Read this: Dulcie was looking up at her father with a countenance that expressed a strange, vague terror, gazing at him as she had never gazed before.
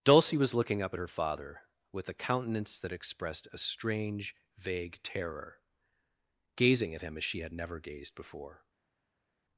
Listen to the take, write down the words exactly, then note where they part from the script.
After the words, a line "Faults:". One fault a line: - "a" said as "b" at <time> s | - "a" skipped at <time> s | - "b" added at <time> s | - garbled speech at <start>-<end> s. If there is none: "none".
Dulcie was looking up at her father with a countenance that expressed a strange, vague terror, gazing at him as she had never gazed before.
Faults:
none